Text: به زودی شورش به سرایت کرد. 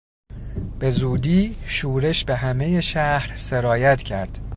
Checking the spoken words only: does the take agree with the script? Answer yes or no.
no